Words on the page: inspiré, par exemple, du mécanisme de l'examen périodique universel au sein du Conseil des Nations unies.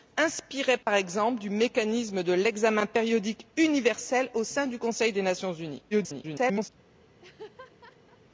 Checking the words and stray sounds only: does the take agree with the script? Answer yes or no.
no